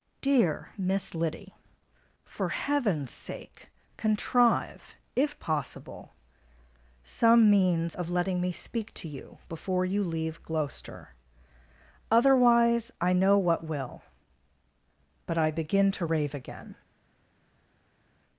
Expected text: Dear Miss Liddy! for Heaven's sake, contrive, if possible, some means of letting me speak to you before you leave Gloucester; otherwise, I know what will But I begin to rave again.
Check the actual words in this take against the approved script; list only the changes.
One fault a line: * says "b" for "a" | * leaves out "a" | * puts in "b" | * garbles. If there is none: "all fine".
all fine